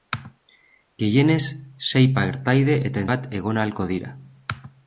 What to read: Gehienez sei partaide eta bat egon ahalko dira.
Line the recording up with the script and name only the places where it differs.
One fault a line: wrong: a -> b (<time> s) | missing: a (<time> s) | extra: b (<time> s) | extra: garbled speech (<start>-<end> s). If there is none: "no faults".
no faults